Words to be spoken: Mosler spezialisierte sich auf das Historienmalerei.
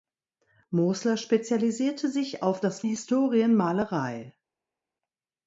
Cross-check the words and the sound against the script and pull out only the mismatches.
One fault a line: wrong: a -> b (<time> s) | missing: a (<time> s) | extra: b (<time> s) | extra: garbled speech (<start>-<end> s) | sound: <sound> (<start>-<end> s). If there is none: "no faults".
no faults